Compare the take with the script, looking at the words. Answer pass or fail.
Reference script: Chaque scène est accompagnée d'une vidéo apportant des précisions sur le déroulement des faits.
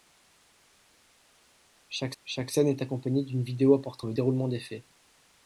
fail